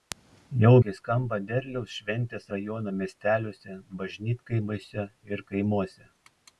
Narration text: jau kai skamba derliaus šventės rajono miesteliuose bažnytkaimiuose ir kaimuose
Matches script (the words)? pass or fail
pass